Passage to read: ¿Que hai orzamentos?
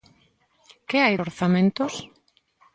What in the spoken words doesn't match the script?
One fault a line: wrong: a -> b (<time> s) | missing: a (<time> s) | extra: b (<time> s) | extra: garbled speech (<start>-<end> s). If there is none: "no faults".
no faults